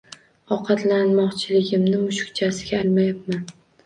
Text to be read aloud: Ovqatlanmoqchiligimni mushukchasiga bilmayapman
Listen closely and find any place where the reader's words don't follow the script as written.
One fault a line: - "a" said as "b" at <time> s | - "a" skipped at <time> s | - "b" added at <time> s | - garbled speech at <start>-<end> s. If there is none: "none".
none